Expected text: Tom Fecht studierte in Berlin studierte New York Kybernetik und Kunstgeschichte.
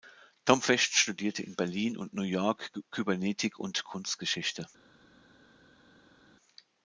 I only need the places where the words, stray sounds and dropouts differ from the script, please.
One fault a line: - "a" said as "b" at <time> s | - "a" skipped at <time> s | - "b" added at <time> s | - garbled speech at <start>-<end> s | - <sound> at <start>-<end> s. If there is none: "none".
- "studierte" said as "und" at 1.9 s